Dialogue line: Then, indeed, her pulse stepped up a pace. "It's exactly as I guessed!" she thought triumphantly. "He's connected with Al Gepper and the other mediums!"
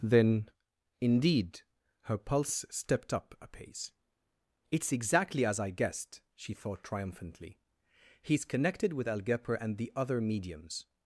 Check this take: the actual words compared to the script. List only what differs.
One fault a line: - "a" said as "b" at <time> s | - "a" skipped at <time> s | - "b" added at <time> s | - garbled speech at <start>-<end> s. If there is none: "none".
none